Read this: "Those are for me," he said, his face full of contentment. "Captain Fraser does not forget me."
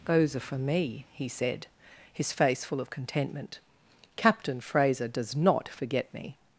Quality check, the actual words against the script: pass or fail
pass